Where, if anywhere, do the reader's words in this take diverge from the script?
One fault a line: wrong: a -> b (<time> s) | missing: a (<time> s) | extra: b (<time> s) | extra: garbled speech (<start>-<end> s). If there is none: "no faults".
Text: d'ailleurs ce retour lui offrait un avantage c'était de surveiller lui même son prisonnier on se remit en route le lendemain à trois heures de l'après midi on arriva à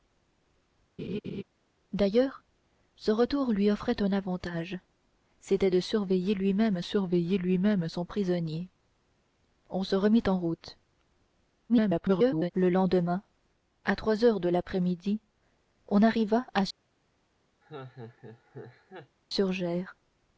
extra: surveiller lui même (6.8 s)
extra: garbled speech (11.7-12.5 s)